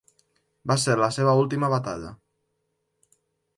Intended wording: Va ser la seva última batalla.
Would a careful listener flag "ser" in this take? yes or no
no